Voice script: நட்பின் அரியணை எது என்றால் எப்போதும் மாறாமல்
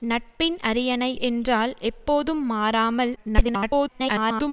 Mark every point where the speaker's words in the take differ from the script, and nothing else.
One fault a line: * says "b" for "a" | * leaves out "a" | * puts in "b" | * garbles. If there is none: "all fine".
* leaves out "எது"
* garbles